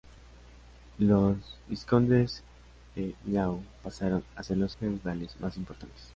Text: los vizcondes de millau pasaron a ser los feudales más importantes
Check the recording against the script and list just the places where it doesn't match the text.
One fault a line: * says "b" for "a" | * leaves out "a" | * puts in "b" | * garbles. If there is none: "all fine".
all fine